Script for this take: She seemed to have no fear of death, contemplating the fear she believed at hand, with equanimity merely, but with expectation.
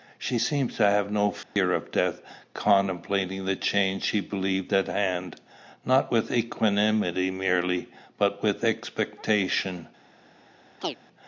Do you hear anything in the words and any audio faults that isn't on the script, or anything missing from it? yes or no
yes